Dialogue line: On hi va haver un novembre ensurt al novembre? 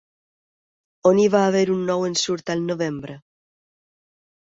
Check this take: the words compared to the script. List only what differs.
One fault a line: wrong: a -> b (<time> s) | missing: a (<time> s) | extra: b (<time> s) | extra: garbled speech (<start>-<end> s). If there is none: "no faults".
wrong: novembre -> nou (1.9 s)